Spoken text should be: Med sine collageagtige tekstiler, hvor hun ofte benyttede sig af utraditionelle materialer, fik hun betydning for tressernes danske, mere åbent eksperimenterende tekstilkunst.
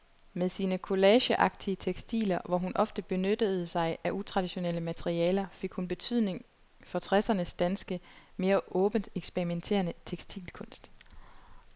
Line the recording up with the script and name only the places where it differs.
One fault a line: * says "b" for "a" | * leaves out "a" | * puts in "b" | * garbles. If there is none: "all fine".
all fine